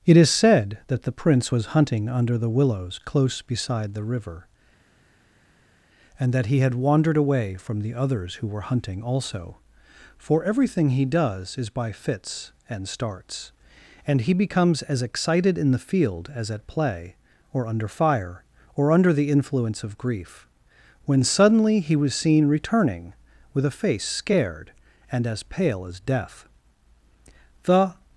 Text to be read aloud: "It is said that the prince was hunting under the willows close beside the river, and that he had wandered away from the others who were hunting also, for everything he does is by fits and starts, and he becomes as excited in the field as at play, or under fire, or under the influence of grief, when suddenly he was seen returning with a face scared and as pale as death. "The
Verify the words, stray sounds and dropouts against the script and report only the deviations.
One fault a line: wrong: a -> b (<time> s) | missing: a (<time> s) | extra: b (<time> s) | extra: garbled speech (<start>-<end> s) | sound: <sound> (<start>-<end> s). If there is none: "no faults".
no faults